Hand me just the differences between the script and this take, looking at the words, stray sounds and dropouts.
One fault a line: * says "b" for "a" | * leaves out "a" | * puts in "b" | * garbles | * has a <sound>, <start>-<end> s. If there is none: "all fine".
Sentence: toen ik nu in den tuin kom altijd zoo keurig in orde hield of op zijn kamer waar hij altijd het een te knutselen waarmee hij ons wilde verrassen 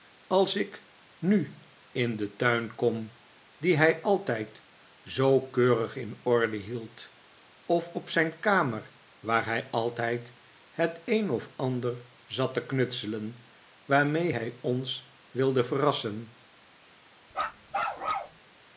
* says "als" for "toen"
* puts in "dien hij"
* puts in "of ander zat"
* has a bark, 17.3-18.4 s